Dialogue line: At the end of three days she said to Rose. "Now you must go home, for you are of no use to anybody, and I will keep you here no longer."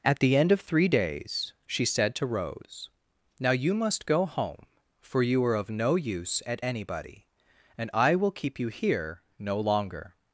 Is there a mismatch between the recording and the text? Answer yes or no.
yes